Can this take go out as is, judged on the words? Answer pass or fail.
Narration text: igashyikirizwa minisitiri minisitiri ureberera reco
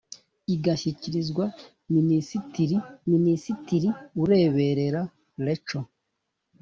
pass